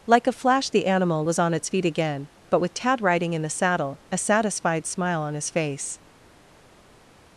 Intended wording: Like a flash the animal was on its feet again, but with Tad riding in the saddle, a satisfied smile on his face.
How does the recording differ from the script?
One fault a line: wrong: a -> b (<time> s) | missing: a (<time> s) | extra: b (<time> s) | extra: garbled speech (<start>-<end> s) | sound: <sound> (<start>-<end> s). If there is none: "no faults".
no faults